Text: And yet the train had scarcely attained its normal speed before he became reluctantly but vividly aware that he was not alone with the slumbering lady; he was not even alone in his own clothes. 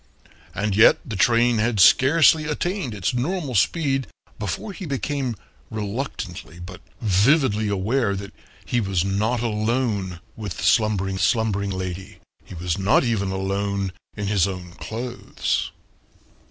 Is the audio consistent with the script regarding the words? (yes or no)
no